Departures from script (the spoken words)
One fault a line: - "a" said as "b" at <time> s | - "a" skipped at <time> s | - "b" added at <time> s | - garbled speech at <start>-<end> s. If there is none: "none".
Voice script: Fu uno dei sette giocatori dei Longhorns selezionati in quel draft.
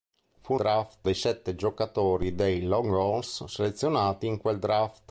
- "uno" said as "draft" at 0.5 s